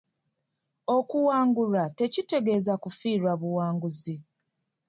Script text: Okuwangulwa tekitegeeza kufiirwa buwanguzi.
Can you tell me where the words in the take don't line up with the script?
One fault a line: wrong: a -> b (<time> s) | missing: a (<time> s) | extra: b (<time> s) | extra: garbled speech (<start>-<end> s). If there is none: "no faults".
no faults